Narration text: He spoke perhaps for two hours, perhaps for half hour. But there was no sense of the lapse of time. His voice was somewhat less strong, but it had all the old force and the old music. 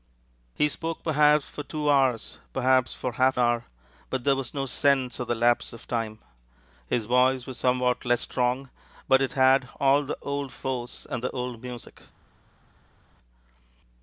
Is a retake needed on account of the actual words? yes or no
no